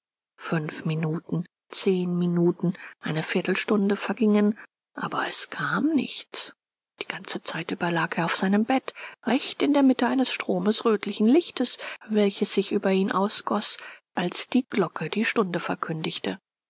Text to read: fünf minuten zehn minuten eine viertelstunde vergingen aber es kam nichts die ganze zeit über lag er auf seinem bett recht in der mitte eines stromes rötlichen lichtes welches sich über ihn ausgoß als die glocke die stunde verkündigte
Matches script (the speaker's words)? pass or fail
pass